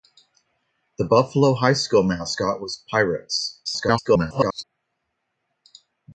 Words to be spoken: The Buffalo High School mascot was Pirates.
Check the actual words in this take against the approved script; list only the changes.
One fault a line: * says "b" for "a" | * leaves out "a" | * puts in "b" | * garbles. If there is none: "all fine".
* garbles